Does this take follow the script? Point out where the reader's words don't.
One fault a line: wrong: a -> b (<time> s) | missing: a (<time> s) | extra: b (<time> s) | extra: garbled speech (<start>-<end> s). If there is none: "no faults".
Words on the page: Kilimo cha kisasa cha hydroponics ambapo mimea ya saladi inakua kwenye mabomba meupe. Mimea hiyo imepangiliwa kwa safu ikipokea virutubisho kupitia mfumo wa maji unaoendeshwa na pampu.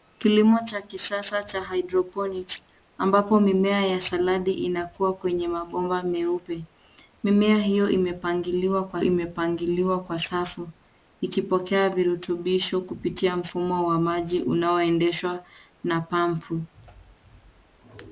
extra: imepangiliwa kwa (9.0 s)